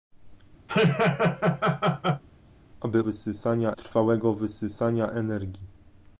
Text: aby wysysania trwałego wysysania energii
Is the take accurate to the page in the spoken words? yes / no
yes